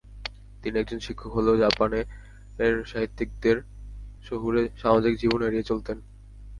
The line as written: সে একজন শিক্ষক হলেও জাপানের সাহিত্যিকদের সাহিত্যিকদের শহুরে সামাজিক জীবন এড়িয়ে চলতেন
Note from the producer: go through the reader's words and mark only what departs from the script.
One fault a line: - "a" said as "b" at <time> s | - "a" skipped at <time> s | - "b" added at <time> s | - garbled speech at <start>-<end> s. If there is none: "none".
- "সে" said as "তিনি" at 0.6 s
- "সাহিত্যিকদের" skipped at 3.6 s